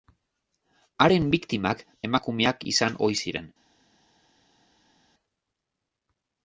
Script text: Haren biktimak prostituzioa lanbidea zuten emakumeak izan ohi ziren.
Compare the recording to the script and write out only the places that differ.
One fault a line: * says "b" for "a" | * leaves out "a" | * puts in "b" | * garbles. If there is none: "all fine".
* leaves out "prostituzioa lanbidea zuten"